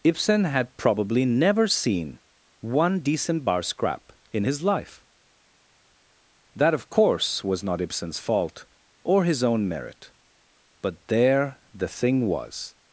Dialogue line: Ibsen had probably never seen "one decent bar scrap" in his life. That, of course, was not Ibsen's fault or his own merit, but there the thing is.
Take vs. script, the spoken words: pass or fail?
fail